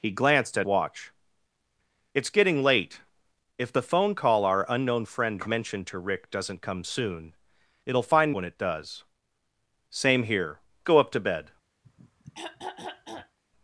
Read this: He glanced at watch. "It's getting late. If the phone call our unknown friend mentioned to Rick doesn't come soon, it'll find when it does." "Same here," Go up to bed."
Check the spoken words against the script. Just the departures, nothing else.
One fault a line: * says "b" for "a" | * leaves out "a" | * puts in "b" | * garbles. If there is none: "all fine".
all fine